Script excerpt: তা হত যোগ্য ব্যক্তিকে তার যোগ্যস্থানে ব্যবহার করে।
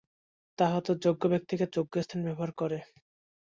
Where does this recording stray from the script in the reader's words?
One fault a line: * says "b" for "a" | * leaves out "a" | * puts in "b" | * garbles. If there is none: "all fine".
* leaves out "তার"